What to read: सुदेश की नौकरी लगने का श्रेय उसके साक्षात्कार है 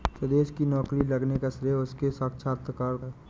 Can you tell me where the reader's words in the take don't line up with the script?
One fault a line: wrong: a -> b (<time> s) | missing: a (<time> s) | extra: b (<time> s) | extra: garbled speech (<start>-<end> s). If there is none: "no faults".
no faults